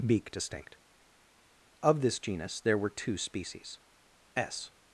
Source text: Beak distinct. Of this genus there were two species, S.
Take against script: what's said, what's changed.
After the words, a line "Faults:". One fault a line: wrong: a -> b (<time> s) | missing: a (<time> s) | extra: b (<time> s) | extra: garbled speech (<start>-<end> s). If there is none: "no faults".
Beak distinct. Of this genus there were two species, S.
Faults:
no faults